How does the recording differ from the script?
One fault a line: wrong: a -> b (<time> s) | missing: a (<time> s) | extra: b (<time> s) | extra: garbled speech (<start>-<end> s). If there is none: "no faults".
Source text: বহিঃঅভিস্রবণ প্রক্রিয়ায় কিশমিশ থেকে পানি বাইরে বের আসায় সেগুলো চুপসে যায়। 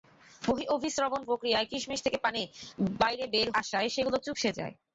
no faults